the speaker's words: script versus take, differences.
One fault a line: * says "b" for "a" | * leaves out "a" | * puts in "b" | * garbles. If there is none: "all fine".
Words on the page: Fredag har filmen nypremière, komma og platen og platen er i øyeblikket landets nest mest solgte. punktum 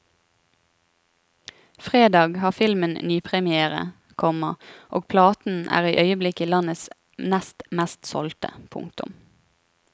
* leaves out "og platen"